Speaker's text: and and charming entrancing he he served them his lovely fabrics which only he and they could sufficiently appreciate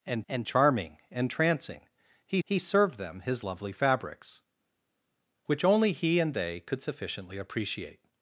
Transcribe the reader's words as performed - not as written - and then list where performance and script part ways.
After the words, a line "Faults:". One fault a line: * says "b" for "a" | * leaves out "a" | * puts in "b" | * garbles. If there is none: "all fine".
and and charming entrancing he he served them his lovely fabrics which only he and they could sufficiently appreciate
Faults:
all fine